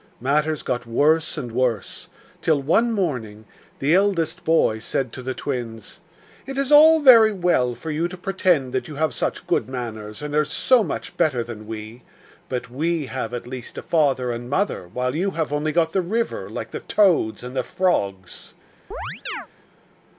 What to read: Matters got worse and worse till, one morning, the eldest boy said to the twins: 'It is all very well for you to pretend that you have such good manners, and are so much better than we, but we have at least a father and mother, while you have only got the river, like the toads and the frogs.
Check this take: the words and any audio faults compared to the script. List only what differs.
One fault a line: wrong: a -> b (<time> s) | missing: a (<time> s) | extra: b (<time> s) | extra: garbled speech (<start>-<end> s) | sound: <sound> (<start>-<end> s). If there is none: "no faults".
sound: chirp (18.9-19.5 s)